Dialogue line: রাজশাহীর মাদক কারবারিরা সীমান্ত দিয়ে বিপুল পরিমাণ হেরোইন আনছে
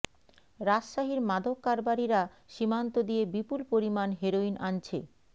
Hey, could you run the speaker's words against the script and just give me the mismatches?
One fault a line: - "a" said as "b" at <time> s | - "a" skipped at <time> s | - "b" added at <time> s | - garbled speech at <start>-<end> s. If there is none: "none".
none